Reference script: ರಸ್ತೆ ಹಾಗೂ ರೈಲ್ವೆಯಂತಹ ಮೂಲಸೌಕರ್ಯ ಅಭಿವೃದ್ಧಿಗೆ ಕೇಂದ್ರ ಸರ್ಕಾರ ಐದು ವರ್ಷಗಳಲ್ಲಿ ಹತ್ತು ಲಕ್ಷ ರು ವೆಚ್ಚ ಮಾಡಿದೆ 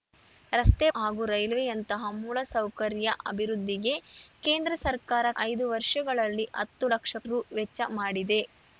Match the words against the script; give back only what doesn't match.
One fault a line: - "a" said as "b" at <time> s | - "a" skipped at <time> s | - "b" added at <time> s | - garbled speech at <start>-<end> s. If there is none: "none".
none